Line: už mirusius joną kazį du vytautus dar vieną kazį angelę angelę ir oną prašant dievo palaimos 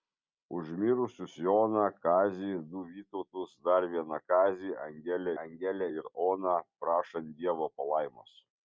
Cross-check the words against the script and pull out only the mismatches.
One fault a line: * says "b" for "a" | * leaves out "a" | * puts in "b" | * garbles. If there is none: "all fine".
all fine